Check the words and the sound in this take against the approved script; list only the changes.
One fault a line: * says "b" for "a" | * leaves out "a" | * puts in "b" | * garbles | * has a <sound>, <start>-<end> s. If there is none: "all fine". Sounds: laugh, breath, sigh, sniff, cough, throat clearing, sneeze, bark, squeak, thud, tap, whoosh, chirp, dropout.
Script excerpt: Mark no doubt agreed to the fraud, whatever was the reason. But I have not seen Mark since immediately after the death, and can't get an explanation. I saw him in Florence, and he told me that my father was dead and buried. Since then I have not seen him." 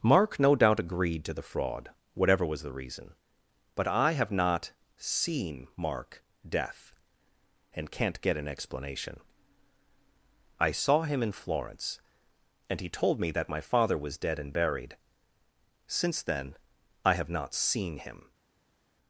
* leaves out "since immediately after the"